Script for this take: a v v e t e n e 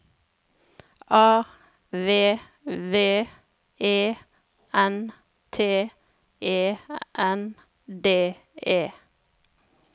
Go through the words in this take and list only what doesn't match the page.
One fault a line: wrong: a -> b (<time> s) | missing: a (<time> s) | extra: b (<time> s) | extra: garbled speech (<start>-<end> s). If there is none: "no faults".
extra: n (4.7 s)
extra: d (7.9 s)